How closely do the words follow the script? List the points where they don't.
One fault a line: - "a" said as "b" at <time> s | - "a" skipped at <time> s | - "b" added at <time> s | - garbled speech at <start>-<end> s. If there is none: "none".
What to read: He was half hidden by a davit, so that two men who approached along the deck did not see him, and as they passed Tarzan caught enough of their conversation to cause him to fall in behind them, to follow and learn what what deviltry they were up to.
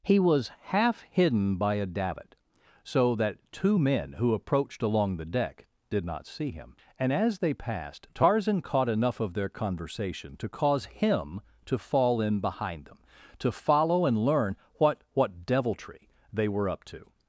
none